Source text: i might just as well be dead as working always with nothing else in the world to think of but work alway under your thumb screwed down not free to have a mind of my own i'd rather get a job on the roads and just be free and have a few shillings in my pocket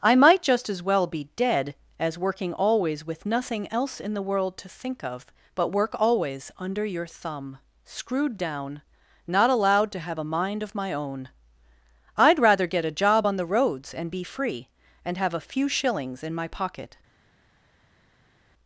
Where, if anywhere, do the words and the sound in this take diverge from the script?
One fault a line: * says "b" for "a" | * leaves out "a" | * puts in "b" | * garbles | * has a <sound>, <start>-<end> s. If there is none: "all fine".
* says "always" for "alway"
* says "allowed" for "free"
* leaves out "just"